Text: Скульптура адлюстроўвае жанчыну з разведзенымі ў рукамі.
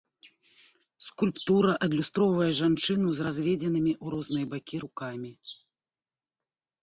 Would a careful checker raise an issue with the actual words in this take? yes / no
yes